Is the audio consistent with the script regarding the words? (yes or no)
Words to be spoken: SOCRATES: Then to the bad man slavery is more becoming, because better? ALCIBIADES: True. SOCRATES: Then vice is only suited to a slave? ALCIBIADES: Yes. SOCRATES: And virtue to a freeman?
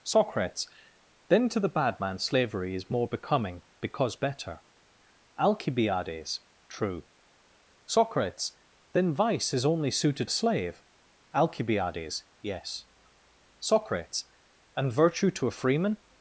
no